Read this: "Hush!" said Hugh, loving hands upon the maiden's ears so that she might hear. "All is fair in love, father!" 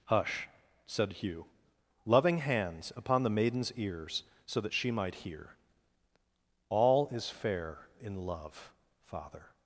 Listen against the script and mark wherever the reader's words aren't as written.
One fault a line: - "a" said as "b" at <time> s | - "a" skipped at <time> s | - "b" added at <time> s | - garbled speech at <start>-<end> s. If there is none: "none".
none